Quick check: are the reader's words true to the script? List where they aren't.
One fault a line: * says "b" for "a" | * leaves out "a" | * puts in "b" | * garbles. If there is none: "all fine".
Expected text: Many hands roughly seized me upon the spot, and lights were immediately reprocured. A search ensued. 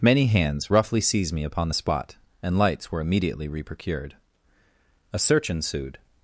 all fine